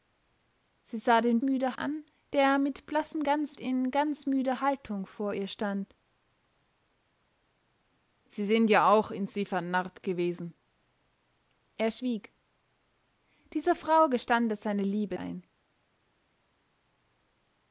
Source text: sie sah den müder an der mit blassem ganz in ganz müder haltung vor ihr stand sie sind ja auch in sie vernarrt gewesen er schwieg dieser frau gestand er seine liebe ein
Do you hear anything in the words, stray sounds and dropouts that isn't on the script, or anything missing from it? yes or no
no